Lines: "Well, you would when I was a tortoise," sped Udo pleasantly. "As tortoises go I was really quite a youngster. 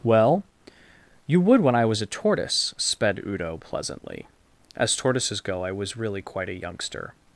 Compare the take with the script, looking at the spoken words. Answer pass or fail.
pass